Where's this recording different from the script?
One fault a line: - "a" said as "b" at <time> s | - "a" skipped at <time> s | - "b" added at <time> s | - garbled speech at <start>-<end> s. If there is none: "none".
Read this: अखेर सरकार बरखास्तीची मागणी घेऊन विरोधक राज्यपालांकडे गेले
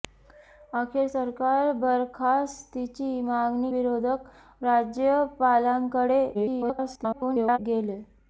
- "घेऊन" skipped at 3.7 s
- garbled speech at 6.3-7.6 s